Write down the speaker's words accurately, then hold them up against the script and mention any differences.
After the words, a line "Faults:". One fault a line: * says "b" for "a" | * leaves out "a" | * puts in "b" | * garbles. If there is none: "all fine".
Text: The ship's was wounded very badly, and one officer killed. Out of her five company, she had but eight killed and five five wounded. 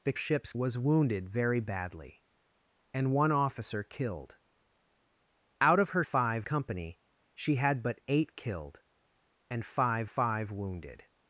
The ship's was wounded very badly, and one officer killed. Out of her five company, she had but eight killed and five five wounded.
Faults:
all fine